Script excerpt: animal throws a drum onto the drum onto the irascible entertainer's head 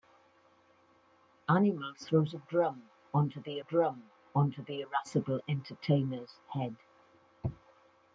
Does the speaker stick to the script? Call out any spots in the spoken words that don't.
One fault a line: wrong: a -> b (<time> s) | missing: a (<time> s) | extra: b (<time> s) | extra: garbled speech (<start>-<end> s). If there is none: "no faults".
no faults